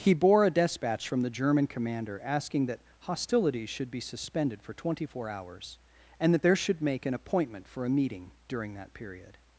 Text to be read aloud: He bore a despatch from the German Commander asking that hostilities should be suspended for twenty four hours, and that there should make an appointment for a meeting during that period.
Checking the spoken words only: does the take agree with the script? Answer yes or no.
yes